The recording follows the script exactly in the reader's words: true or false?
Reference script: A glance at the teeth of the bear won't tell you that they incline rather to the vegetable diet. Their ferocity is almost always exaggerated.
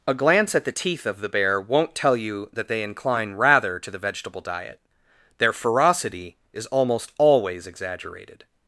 true